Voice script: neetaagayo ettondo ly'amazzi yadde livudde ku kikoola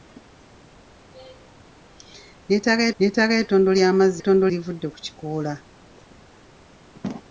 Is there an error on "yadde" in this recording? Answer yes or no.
yes